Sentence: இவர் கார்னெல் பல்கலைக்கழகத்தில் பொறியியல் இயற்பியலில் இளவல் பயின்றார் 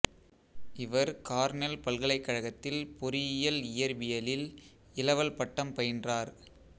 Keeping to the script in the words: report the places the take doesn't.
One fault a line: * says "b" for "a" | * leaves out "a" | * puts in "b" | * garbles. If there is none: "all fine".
* puts in "பட்டம்"